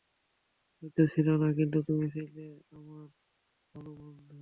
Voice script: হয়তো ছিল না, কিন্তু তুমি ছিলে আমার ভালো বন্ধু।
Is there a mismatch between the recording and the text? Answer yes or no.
no